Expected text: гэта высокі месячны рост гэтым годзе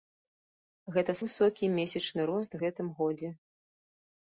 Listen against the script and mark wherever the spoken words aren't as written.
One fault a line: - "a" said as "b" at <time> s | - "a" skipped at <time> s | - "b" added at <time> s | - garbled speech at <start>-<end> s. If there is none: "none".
none